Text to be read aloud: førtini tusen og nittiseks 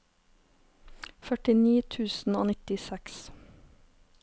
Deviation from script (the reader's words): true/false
false